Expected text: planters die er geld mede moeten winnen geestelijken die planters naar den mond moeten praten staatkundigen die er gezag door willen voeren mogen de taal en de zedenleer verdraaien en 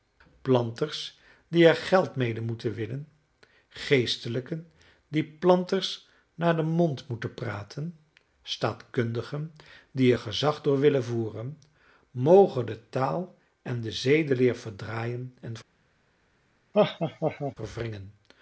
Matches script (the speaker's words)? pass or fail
pass